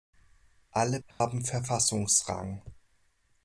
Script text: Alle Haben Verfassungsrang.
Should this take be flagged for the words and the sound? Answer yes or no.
yes